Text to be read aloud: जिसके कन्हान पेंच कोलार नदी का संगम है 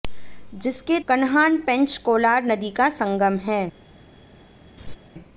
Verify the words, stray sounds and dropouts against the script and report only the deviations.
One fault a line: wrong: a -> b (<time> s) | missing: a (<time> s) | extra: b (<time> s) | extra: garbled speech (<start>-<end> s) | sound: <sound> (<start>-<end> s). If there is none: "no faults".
sound: laugh (4.8-5.0 s)